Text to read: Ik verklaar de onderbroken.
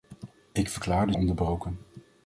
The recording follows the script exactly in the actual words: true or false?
true